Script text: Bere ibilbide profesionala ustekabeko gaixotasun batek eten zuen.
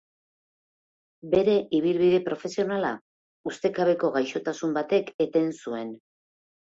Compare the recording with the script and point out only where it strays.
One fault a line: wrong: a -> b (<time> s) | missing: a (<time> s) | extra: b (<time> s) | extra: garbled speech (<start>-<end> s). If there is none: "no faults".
no faults